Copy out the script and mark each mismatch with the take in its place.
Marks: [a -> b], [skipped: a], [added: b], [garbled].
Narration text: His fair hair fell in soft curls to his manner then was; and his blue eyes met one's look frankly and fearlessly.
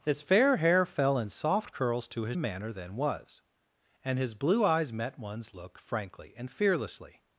His fair hair fell in soft curls to his manner then was; and his blue eyes met one's look frankly and fearlessly.